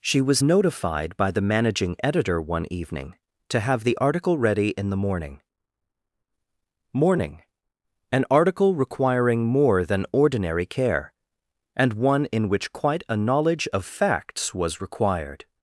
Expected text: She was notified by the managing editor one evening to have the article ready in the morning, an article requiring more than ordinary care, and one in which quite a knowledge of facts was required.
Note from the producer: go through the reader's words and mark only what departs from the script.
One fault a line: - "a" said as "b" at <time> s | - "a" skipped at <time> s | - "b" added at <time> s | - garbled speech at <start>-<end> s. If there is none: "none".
- "morning" added at 6.9 s